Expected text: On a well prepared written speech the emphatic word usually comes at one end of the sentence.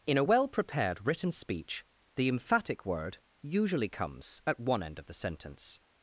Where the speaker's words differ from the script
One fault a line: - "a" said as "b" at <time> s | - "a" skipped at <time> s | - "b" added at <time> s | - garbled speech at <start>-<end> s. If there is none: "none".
- "On" said as "In" at 0.1 s